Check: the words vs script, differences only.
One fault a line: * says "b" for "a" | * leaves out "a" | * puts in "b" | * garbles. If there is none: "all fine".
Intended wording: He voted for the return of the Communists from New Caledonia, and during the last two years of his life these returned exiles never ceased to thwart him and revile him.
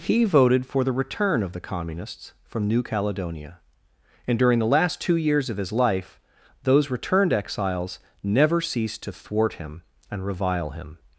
* says "those" for "these"